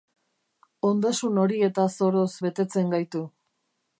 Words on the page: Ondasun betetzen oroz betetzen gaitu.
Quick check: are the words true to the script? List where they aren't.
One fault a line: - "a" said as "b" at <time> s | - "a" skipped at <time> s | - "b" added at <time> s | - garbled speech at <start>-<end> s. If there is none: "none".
- "betetzen" said as "horietaz" at 1.4 s